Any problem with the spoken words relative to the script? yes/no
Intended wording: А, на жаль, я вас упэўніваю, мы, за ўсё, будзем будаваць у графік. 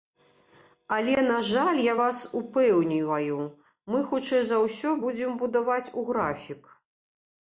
yes